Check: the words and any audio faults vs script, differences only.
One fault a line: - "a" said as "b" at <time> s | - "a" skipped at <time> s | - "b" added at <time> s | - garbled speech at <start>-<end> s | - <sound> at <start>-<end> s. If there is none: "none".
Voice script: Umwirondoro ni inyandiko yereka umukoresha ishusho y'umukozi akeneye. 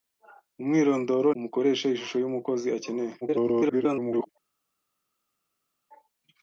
- "ni inyandiko yereka" skipped at 1.3 s
- garbled speech at 3.2-4.3 s